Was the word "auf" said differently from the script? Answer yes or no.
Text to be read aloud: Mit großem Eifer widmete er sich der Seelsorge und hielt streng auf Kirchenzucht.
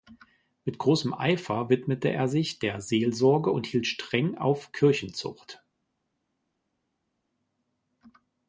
no